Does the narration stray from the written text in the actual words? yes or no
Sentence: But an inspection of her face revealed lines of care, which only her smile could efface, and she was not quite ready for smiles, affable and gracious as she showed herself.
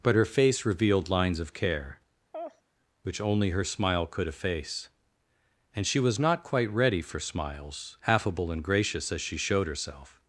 yes